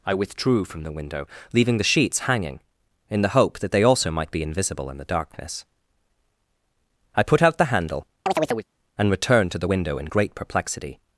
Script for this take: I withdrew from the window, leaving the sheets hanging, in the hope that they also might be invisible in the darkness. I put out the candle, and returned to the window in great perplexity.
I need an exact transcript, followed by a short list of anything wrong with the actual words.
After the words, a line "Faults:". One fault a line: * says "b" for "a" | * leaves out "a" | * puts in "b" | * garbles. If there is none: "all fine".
I withdrew from the window, leaving the sheets hanging, in the hope that they also might be invisible in the darkness. I put out the handle, and returned to the window in great perplexity.
Faults:
* says "handle" for "candle"